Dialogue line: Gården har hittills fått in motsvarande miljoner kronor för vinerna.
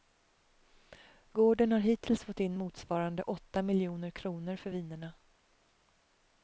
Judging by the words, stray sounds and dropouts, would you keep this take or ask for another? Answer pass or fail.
fail